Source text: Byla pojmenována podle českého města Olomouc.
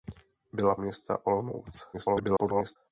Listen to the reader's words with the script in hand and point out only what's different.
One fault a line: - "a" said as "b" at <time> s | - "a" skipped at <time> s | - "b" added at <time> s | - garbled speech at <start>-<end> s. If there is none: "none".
- "pojmenována podle českého" skipped at 0.8 s
- garbled speech at 1.9-2.8 s